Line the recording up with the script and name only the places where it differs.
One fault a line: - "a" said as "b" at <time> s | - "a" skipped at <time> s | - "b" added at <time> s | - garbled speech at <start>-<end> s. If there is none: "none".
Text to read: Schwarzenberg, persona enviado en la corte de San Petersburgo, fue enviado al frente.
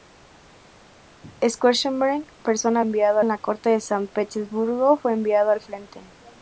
none